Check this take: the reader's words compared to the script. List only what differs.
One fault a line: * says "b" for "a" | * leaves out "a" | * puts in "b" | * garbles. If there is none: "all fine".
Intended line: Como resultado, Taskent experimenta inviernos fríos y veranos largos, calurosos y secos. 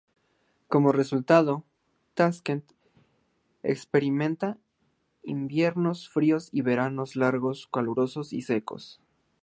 all fine